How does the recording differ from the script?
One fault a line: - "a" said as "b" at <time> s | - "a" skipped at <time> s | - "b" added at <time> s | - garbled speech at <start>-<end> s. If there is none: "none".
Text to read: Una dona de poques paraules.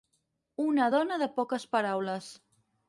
none